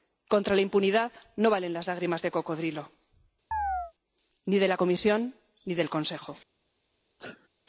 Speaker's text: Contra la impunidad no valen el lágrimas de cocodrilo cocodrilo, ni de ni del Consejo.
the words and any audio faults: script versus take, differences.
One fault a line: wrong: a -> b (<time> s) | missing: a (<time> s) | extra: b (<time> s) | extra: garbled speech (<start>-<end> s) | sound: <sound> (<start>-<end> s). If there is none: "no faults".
wrong: el -> las (1.7 s)
missing: cocodrilo (2.9 s)
sound: chirp (3.5-3.9 s)
extra: la Comisión (4.7 s)
sound: sneeze (7.2-7.5 s)